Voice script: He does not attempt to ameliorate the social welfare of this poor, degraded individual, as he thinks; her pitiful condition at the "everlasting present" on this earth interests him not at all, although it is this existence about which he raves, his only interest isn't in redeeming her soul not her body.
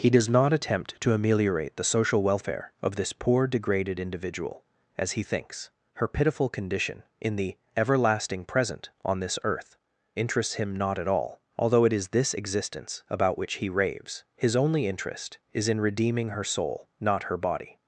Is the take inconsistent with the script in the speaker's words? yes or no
yes